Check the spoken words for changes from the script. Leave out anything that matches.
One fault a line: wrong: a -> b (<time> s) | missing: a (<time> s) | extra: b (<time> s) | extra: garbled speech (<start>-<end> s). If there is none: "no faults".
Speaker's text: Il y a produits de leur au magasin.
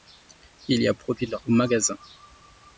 no faults